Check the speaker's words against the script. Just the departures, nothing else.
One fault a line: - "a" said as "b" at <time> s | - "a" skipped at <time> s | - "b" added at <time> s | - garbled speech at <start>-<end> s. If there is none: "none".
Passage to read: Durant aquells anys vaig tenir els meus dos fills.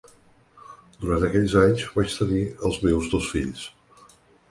none